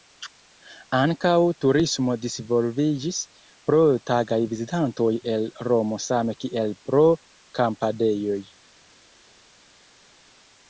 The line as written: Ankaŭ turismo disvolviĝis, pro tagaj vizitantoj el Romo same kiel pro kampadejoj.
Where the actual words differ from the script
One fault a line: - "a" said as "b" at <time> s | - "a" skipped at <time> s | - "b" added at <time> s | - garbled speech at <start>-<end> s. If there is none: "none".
none